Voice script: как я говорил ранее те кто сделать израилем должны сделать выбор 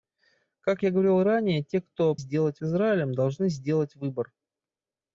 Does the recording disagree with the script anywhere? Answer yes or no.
no